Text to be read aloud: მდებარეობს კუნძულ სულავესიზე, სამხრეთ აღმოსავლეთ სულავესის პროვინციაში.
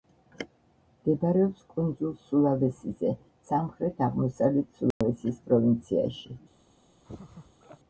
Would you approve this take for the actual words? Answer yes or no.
yes